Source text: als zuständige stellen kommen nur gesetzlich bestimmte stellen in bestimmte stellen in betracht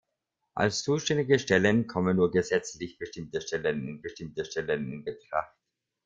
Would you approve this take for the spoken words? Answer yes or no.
yes